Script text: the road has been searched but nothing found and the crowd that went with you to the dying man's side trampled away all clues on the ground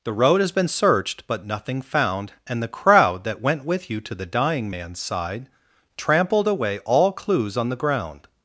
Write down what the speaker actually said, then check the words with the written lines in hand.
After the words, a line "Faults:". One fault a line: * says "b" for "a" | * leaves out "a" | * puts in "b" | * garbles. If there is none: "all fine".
the road has been searched but nothing found and the crowd that went with you to the dying man's side trampled away all clues on the ground
Faults:
all fine